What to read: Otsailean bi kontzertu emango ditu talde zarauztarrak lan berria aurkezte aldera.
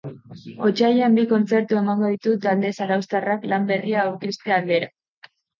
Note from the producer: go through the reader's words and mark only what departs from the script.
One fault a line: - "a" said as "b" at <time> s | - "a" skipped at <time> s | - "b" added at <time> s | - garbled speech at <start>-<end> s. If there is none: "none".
none